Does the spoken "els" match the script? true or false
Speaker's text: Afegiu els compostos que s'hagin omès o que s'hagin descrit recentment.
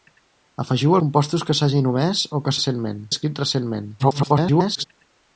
false